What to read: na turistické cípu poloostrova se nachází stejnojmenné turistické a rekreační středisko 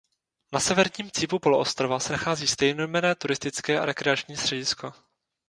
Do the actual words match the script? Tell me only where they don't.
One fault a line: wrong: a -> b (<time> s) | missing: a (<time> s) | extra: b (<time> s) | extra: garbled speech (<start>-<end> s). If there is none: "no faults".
wrong: turistické -> severním (0.6 s)